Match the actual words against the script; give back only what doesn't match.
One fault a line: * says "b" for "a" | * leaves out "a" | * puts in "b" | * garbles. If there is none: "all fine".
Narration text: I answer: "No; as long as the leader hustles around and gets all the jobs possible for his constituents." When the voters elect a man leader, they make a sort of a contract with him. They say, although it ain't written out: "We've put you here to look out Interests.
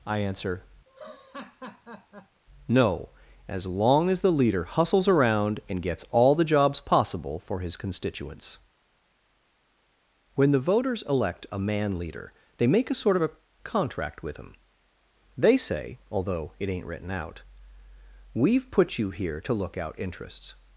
all fine